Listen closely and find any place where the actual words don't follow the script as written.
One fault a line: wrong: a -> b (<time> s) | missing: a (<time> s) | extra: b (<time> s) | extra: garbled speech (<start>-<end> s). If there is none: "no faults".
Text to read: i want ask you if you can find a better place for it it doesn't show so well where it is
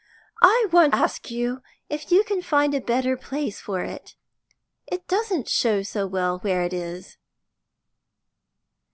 no faults